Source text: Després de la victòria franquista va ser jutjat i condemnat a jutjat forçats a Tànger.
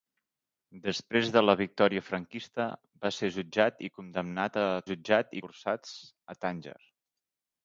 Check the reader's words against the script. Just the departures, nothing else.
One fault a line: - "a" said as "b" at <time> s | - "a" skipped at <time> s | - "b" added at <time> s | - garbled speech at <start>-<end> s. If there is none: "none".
none